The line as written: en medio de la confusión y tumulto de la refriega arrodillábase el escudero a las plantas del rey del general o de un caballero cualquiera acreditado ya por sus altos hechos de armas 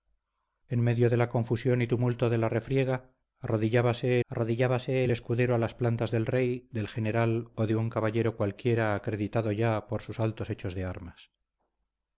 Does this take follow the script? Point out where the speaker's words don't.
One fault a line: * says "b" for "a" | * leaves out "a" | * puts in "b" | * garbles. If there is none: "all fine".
* puts in "arrodillábase"